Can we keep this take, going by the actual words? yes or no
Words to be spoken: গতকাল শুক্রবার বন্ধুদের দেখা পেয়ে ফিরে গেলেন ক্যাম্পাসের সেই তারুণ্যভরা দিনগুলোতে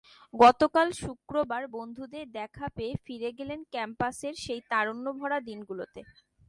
yes